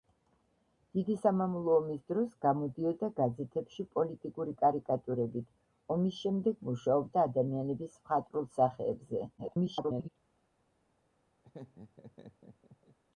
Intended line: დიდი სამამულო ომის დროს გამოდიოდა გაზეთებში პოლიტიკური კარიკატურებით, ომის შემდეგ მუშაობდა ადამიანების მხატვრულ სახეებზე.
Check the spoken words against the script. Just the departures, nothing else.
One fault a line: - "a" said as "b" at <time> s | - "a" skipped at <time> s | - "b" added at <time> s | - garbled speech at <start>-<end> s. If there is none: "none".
- garbled speech at 9.4-10.1 s